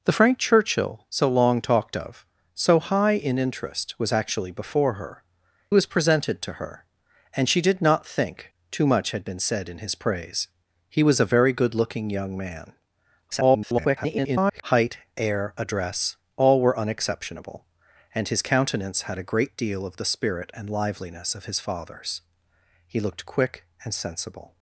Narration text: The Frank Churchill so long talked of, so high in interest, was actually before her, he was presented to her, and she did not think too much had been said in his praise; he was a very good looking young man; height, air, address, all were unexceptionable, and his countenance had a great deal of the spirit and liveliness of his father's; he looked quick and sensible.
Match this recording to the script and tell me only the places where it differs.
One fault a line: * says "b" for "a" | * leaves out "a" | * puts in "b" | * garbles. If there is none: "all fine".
* leaves out "he"
* garbles